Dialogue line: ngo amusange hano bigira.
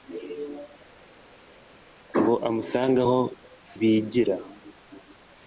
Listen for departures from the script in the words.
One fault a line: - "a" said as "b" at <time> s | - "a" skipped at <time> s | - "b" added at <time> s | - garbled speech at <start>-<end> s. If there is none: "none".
- "hano" said as "aho" at 3.0 s